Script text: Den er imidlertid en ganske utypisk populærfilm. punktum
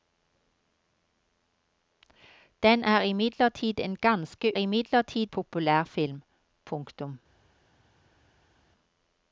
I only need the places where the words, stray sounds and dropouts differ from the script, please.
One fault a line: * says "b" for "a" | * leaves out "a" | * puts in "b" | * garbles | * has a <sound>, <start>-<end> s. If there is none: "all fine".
* says "imidlertid" for "utypisk"